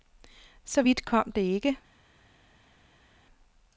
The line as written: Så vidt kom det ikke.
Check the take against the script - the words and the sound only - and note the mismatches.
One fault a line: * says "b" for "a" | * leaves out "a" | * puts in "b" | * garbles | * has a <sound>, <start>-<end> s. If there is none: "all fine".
all fine